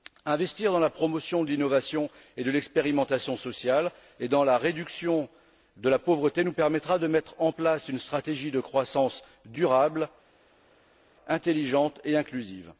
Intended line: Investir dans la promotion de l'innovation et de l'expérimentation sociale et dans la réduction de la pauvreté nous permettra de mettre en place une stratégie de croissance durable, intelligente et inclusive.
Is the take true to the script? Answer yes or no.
yes